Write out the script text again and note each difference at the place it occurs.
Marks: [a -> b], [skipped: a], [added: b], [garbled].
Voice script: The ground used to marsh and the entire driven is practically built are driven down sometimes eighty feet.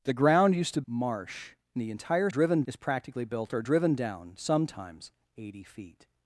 The ground used to marsh and the entire driven is practically built are driven down sometimes eighty feet.